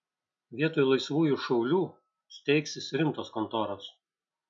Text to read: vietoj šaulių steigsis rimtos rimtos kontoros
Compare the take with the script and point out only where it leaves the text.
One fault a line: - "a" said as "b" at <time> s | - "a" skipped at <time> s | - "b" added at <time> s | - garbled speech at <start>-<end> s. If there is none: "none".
- "laisvųjų" added at 0.9 s
- "rimtos" skipped at 3.3 s